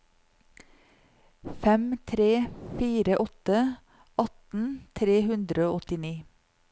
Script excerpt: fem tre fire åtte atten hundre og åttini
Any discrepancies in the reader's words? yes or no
yes